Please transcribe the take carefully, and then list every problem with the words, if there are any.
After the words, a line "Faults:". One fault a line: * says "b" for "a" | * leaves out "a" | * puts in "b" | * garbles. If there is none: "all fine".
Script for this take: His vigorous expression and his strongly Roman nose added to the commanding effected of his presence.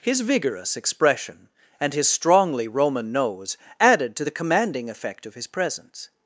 His vigorous expression and his strongly Roman nose added to the commanding effect of his presence.
Faults:
* says "effect" for "effected"